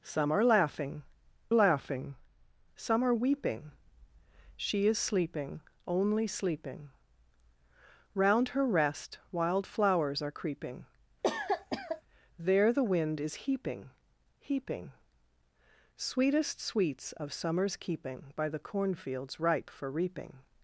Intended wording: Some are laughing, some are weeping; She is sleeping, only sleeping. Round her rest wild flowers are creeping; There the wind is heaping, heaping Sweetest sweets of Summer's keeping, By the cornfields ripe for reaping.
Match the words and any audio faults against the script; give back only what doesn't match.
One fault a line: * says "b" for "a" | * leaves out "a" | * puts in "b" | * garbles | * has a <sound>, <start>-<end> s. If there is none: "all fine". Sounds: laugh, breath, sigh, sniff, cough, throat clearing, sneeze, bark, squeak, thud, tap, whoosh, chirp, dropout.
* puts in "laughing"
* has a cough, 11.2-12.0 s